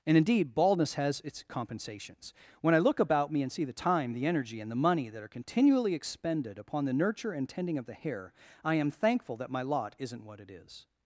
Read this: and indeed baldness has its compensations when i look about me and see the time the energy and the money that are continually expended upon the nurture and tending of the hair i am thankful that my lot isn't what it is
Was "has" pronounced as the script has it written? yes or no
yes